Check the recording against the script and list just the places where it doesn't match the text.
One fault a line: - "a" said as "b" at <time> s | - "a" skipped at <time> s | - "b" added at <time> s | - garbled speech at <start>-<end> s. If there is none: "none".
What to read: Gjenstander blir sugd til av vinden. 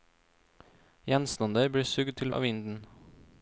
none